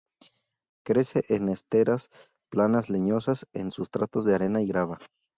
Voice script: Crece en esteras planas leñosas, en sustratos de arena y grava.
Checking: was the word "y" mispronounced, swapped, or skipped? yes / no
no